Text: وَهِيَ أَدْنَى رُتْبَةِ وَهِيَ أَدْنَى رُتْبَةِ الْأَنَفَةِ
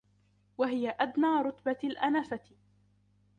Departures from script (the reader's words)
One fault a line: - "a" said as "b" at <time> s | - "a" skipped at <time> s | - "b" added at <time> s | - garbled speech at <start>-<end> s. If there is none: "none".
- "وَهِيَ أَدْنَى رُتْبَةِ" skipped at 1.8 s